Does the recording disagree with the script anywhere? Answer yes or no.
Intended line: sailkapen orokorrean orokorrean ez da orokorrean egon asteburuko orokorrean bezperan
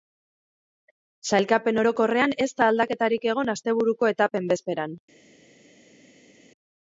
yes